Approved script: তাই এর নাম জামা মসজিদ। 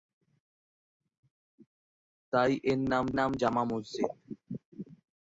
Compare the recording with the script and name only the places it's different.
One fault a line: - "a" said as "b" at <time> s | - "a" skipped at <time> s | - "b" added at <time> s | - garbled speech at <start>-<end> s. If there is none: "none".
- "নাম" added at 3.2 s